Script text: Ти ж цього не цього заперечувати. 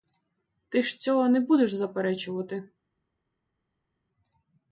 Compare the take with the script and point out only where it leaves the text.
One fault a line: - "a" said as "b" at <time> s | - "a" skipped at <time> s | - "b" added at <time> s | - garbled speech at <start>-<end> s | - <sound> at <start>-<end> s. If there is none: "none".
- "цього" said as "будеш" at 1.4 s